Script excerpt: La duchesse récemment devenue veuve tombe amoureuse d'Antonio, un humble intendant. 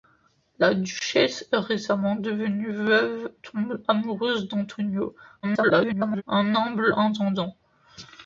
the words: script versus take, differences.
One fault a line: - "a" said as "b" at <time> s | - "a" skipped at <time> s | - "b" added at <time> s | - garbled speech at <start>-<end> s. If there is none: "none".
- garbled speech at 5.4-6.2 s